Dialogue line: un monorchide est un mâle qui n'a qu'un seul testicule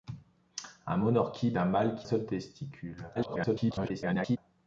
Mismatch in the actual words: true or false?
true